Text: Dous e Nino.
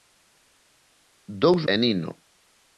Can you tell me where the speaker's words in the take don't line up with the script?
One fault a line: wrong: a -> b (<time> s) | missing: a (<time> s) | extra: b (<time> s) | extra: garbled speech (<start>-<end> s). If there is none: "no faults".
no faults